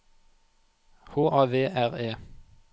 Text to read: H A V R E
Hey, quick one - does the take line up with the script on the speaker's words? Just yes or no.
yes